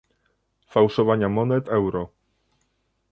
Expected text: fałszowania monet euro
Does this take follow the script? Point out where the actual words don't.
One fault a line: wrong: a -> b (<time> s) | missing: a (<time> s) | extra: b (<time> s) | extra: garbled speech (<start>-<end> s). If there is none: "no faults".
no faults